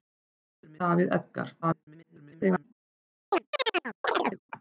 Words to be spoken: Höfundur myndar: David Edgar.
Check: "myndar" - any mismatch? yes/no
yes